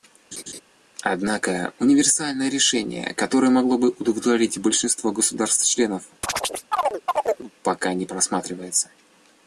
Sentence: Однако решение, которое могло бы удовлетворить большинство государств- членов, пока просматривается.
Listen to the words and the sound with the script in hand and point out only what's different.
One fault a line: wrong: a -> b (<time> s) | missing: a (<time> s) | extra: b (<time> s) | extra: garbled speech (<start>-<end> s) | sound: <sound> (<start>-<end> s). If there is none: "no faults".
sound: laugh (0.3-0.6 s)
extra: универсальное (1.8 s)
sound: chirp (6.2-7.5 s)
extra: не (7.9 s)